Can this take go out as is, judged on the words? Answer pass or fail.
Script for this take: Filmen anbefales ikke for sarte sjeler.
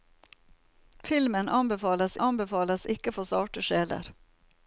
fail